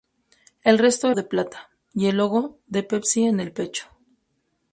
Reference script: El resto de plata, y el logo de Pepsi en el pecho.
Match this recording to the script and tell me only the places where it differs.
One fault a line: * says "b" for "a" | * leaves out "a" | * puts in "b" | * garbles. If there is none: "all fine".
all fine